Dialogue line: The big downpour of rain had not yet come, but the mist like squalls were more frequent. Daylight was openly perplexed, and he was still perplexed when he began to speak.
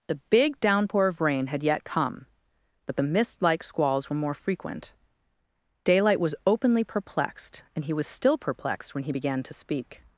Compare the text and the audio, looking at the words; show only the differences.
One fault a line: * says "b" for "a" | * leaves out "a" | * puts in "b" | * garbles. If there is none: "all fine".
* leaves out "not"